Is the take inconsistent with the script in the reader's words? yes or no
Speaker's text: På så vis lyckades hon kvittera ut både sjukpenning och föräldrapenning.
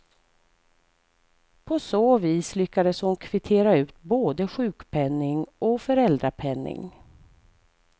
no